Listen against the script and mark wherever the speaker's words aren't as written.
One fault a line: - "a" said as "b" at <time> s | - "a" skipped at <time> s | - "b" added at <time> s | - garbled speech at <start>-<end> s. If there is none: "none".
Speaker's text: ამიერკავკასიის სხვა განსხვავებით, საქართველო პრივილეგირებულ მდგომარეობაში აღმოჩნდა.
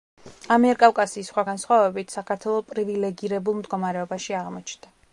none